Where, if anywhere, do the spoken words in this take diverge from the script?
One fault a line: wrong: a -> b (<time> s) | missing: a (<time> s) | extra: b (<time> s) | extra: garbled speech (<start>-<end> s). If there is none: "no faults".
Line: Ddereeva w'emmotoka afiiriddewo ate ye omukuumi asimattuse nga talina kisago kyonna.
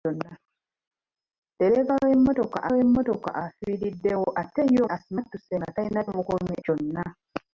extra: w'emmotoka (2.7 s)
missing: omukuumi (4.8 s)
wrong: kisago -> omukuumi (6.1 s)